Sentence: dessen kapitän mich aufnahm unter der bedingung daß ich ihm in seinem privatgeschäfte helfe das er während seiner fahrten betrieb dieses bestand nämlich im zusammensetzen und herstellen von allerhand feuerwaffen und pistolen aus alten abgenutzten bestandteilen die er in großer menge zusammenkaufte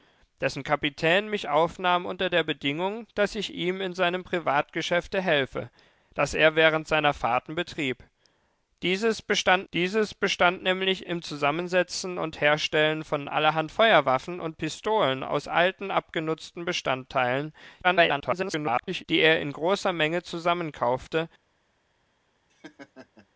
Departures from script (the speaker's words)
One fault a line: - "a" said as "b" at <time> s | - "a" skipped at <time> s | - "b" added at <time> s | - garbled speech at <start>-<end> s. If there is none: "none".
- "dieses bestand" added at 9.7 s
- garbled speech at 17.8-19.0 s